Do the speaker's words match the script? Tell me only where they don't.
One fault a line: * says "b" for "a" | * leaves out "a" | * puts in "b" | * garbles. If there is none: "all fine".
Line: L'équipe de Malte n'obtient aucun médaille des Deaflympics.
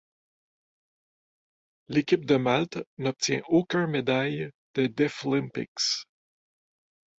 all fine